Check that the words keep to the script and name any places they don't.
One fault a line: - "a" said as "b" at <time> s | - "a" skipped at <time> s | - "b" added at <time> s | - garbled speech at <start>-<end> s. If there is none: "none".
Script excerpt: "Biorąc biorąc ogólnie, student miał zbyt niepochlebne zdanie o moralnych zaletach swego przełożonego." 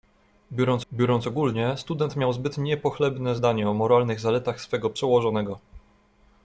none